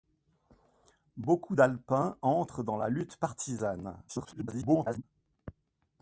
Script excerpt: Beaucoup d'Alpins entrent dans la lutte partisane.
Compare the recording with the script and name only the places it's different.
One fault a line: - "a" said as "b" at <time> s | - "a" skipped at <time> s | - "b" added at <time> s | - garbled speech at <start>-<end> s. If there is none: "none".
- garbled speech at 4.1-5.0 s